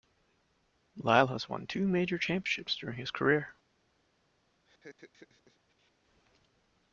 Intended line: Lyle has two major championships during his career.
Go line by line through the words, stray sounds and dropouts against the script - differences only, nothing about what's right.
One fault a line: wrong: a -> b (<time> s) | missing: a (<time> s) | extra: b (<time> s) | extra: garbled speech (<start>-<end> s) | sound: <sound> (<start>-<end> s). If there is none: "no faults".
extra: won (1.5 s)
sound: laugh (4.6-5.9 s)